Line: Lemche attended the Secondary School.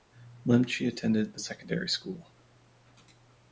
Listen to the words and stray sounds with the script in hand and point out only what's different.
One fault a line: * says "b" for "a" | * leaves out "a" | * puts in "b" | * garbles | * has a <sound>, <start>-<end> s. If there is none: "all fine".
all fine